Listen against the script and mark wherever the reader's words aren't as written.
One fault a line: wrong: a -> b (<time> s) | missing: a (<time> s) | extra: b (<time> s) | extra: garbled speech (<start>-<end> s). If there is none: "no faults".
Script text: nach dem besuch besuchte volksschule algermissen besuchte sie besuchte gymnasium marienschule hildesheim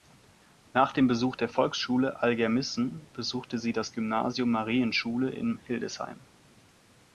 wrong: besuchte -> der (1.4 s)
wrong: besuchte -> das (3.7 s)
extra: in (5.3 s)